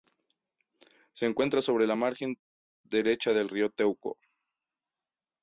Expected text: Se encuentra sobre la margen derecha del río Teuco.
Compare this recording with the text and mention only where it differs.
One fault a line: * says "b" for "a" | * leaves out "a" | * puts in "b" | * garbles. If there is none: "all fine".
all fine